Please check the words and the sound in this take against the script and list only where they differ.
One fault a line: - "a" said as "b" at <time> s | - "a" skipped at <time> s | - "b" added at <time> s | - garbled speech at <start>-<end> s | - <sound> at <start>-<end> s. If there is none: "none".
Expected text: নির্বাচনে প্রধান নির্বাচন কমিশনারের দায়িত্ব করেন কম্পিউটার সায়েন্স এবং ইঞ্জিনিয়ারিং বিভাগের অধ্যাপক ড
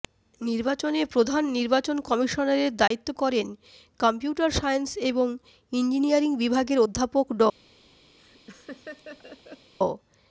- dropout at 2.9-2.9 s
- laugh at 8.2-9.7 s